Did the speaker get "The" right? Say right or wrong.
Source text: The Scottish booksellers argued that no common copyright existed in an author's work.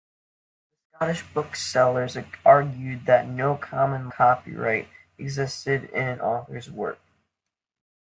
right